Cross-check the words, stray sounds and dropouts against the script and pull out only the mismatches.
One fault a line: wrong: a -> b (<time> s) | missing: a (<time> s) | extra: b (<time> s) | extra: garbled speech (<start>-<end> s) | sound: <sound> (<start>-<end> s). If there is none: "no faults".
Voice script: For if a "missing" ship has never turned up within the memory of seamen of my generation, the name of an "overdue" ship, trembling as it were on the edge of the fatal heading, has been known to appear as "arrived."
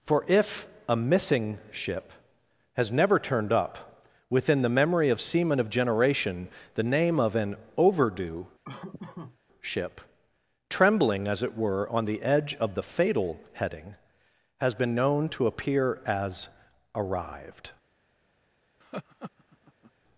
missing: my (5.7 s)
sound: laugh (8.6-9.4 s)
sound: laugh (18.8-19.9 s)